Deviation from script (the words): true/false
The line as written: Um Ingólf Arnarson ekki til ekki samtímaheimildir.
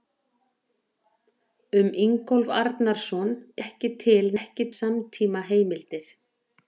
false